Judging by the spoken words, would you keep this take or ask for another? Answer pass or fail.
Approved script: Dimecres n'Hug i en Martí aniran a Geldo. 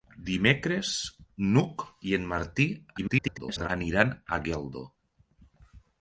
fail